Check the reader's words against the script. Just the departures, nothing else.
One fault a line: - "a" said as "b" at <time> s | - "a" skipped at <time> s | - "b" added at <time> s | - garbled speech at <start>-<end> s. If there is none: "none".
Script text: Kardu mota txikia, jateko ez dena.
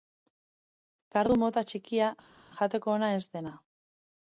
- "ona" added at 2.9 s